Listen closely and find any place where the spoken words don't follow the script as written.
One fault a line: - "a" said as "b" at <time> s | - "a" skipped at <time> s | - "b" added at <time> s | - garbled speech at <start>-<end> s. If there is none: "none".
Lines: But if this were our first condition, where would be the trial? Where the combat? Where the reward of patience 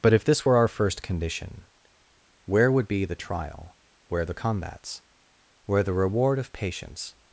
- "combat" said as "combats" at 4.3 s